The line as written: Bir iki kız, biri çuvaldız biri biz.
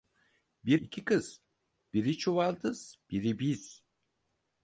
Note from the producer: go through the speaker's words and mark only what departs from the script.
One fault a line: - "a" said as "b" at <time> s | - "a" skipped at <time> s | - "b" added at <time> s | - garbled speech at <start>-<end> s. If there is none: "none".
none